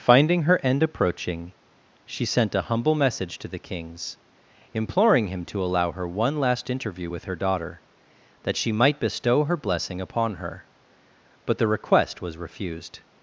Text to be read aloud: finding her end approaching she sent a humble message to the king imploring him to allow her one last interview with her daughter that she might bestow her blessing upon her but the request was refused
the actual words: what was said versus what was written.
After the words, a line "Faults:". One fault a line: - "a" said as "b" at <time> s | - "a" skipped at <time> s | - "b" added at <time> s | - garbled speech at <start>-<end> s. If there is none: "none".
finding her end approaching she sent a humble message to the kings imploring him to allow her one last interview with her daughter that she might bestow her blessing upon her but the request was refused
Faults:
- "king" said as "kings" at 3.6 s